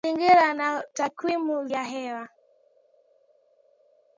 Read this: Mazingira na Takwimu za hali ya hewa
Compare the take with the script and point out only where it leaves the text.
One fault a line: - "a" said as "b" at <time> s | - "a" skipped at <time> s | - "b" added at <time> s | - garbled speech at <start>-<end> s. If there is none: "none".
- "za hali" skipped at 1.7 s